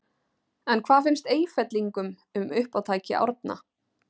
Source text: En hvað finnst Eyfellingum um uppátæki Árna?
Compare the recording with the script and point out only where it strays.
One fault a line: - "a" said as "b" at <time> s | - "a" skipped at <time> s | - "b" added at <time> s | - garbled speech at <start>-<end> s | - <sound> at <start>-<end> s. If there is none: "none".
none